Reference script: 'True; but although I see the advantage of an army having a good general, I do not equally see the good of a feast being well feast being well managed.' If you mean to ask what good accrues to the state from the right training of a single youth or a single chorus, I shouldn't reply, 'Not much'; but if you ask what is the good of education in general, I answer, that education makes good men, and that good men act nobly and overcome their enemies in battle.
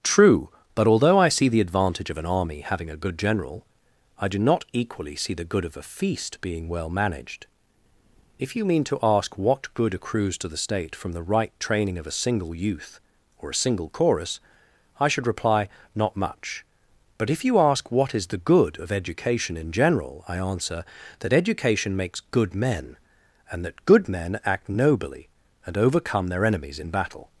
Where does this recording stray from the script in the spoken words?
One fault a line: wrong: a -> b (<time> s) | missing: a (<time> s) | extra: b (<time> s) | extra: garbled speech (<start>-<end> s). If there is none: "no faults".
missing: feast being well (6.9 s)
wrong: shouldn't -> should (15.1 s)